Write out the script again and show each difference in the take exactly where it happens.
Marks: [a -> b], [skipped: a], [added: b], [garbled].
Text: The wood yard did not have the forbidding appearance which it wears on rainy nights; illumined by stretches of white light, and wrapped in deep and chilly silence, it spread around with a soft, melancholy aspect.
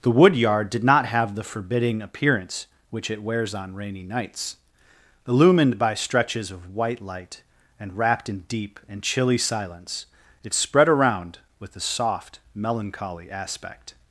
The wood yard did not have the forbidding appearance which it wears on rainy nights; illumined by stretches of white light, and wrapped in deep and chilly silence, it spread around with a soft, melancholy aspect.